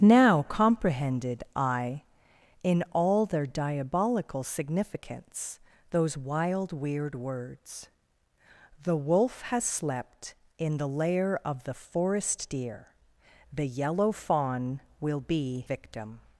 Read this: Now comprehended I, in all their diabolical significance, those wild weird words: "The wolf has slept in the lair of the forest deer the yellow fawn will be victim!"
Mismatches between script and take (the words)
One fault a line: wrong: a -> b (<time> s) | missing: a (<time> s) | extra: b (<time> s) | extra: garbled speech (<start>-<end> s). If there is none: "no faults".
no faults